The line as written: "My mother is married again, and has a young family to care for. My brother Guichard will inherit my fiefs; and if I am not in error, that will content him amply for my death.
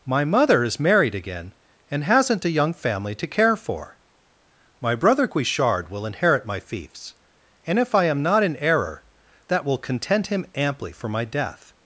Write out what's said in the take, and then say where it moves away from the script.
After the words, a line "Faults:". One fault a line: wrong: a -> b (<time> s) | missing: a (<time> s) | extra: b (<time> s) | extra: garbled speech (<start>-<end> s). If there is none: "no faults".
"My mother is married again, and hasn't a young family to care for. My brother Guichard will inherit my fiefs; and if I am not in error, that will content him amply for my death.
Faults:
wrong: has -> hasn't (2.0 s)